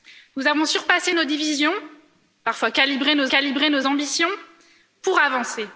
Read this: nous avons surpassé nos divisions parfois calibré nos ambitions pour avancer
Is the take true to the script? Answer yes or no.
no